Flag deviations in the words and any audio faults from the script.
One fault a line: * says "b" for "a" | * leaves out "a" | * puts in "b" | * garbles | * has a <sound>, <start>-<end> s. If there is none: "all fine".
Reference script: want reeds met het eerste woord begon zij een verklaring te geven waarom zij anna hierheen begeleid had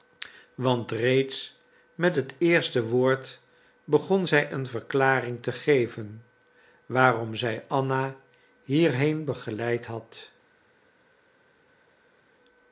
all fine